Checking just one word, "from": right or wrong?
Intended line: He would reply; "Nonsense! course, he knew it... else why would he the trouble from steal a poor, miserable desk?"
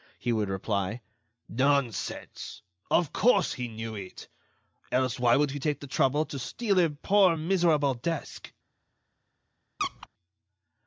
wrong